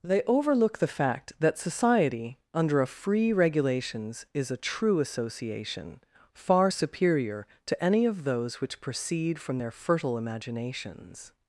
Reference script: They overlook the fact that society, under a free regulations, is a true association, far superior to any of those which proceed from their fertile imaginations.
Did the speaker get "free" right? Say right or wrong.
right